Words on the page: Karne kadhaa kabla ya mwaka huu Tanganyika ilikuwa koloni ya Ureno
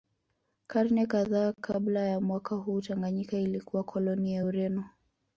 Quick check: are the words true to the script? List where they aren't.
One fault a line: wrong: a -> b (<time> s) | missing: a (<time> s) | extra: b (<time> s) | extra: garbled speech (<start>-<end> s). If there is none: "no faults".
no faults